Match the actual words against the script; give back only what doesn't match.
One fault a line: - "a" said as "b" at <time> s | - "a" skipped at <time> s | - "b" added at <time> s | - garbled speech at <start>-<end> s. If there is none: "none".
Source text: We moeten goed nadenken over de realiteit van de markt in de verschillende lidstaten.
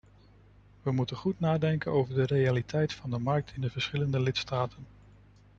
none